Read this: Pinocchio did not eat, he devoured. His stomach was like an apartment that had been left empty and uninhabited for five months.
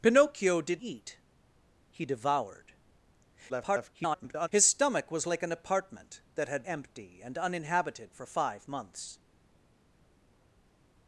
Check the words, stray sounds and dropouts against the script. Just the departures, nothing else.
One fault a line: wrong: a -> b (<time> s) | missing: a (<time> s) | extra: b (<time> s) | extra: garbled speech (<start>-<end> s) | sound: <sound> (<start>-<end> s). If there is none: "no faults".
missing: not (0.8 s)
extra: garbled speech (3.5-4.5 s)
missing: been left (6.6 s)